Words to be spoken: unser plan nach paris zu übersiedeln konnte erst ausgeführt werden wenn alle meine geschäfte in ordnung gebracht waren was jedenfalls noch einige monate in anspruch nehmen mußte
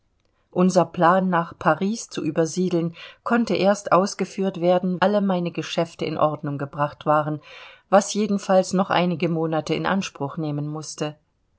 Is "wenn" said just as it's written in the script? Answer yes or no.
no